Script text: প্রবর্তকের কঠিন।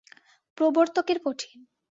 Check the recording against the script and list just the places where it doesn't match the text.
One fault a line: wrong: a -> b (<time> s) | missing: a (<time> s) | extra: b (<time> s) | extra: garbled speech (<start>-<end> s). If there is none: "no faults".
no faults